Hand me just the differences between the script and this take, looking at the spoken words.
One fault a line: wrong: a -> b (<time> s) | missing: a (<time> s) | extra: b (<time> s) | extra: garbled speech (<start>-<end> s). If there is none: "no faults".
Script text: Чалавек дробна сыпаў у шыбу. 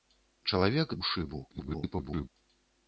missing: дробна сыпаў (1.0 s)
extra: garbled speech (1.5-2.3 s)